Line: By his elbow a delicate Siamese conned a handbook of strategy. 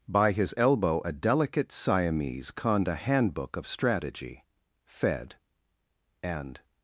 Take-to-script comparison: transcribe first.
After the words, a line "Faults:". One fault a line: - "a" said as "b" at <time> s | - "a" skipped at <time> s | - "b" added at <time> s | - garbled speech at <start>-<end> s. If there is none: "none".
By his elbow a delicate Siamese conned a handbook of strategy. Fed and
Faults:
- "Fed and" added at 4.9 s